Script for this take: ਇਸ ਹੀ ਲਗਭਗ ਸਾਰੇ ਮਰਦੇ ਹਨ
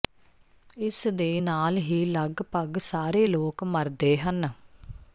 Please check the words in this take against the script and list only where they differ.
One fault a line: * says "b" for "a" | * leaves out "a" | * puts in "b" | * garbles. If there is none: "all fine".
* puts in "ਦੇ ਨਾਲ"
* puts in "ਲੋਕ"